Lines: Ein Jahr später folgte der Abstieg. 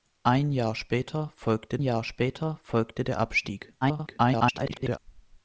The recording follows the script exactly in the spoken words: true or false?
false